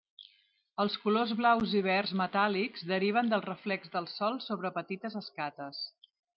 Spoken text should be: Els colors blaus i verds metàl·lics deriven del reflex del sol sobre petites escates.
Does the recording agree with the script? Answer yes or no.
yes